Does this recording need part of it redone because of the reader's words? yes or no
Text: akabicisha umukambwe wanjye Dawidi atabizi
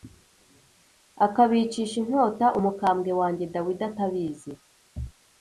yes